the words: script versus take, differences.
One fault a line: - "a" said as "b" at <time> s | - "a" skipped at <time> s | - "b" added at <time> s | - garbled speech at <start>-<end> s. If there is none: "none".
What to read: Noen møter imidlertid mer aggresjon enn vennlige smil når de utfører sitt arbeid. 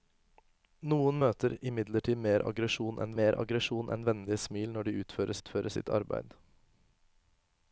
- "mer aggresjon enn" added at 3.2 s
- "utfører" added at 5.4 s